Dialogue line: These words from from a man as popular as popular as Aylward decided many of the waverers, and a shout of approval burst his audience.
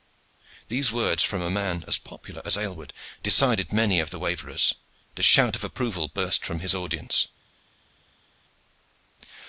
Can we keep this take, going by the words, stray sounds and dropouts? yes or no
no